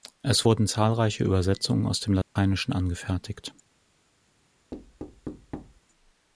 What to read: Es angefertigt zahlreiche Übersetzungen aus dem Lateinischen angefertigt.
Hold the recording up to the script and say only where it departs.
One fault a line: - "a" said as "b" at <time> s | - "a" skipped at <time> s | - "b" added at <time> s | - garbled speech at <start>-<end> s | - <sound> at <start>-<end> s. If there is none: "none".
- "angefertigt" said as "wurden" at 0.4 s
- dropout at 2.2-2.4 s
- thud at 4.7-5.8 s